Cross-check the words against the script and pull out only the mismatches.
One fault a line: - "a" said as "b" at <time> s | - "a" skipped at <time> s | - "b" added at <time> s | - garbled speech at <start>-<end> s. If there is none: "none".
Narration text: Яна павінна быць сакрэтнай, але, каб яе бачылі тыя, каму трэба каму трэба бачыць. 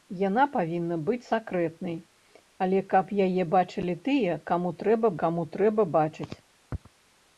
none